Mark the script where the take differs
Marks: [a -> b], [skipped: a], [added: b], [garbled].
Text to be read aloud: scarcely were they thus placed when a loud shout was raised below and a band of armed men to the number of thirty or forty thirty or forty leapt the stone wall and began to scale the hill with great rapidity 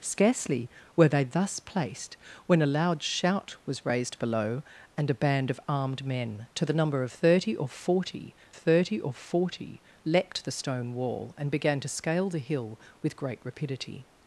scarcely were they thus placed when a loud shout was raised below and a band of armed men to the number of thirty or forty thirty or forty leapt the stone wall and began to scale the hill with great rapidity